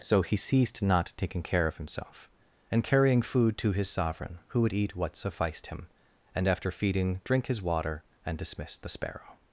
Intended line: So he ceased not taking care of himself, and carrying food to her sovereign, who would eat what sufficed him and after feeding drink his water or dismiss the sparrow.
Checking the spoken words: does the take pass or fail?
fail